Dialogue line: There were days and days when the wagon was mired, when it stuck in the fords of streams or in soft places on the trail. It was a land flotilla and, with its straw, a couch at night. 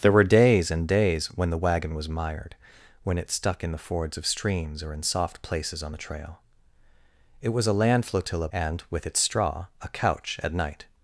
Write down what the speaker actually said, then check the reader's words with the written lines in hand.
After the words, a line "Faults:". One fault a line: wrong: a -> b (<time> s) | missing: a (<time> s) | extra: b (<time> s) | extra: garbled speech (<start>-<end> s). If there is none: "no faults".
There were days and days when the wagon was mired, when it stuck in the fords of streams or in soft places on the trail. It was a land flotilla and, with its straw, a couch at night.
Faults:
no faults